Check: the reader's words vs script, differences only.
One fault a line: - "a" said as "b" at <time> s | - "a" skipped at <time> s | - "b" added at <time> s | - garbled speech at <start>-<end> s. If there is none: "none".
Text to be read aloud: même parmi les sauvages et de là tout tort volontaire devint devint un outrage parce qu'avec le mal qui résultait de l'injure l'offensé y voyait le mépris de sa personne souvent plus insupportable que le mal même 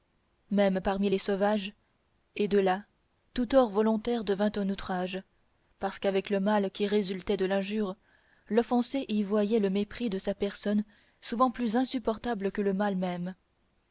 - "devint" skipped at 4.5 s